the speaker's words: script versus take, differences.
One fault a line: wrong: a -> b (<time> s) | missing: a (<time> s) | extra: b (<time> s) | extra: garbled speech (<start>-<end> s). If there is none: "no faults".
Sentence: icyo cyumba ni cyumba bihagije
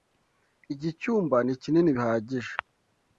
wrong: icyo -> iki (0.7 s)
wrong: cyumba -> kinini (1.6 s)